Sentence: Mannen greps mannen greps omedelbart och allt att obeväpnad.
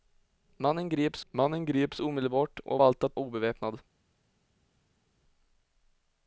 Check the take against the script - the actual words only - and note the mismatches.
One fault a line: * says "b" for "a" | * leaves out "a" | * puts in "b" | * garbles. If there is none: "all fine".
all fine